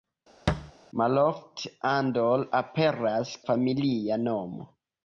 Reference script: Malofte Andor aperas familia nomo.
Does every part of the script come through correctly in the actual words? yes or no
yes